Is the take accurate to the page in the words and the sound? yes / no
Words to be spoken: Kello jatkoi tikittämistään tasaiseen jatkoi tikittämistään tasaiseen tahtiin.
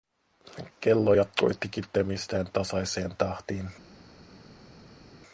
no